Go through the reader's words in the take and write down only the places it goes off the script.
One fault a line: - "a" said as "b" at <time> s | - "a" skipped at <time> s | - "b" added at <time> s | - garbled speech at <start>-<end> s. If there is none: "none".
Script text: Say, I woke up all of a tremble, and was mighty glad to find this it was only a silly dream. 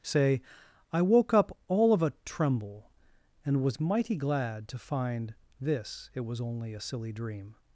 none